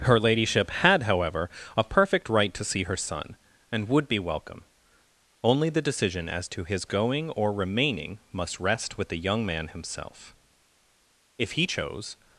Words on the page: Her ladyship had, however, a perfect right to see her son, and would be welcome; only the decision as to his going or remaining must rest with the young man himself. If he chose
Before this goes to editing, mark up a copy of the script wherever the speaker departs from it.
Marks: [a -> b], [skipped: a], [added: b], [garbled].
Her ladyship had, however, a perfect right to see her son, and would be welcome; only the decision as to his going or remaining must rest with the young man himself. If he chose